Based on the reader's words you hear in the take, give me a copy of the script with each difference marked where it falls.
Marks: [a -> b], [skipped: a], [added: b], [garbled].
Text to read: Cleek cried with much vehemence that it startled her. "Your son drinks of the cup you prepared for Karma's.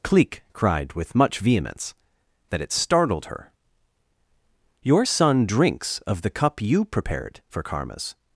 Cleek cried with much vehemence that it startled her. "Your son drinks of the cup you prepared for Karma's.